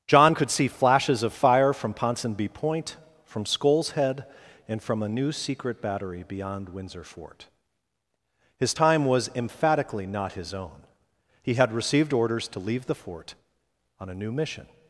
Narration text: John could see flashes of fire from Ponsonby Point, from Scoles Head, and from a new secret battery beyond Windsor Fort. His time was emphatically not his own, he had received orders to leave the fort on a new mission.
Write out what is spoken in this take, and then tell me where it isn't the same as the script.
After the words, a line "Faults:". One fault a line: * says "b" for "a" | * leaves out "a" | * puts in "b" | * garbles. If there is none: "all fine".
John could see flashes of fire from Ponsonby Point, from Scoles Head, and from a new secret battery beyond Windsor Fort. His time was emphatically not his own, he had received orders to leave the fort on a new mission.
Faults:
all fine